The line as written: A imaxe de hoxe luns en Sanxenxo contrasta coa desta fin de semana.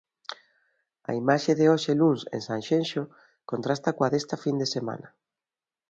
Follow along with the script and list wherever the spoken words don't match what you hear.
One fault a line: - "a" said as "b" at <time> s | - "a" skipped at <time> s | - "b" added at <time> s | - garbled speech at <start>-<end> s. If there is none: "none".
none